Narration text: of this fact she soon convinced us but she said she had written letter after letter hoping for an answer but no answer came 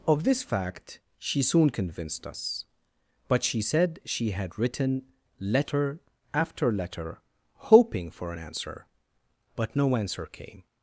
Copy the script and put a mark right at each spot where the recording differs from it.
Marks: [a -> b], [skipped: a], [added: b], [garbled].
of this fact she soon convinced us but she said she had written letter after letter hoping for an answer but no answer came